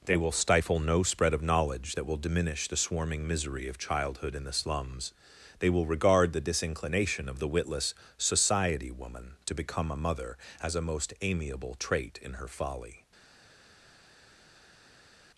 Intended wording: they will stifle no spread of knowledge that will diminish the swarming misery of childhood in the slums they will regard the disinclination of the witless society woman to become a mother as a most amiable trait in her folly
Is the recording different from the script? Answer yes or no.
no